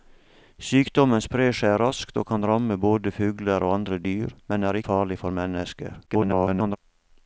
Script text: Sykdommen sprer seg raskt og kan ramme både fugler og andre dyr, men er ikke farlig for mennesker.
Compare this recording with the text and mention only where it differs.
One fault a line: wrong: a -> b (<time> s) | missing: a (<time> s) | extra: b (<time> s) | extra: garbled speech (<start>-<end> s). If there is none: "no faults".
missing: ikke (4.8 s)
extra: garbled speech (6.1-6.8 s)